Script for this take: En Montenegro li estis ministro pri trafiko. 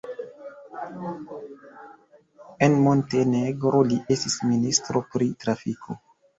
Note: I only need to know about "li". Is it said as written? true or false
true